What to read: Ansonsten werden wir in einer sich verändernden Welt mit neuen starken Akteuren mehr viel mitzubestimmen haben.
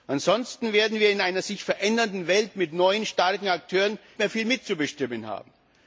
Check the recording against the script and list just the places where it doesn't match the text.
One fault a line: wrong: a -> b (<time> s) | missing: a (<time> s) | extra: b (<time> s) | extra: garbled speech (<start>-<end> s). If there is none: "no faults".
no faults